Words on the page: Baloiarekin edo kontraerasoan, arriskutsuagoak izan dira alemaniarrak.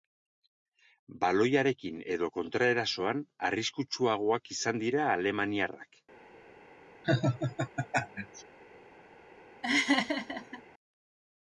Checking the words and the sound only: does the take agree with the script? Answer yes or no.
no